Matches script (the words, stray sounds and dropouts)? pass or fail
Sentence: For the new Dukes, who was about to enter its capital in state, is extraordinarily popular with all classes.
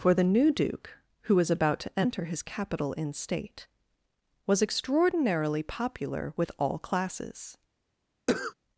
fail